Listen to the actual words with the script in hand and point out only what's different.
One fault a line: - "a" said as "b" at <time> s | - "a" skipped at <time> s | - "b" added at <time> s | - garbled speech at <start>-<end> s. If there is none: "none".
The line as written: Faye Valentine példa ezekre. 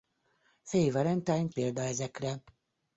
none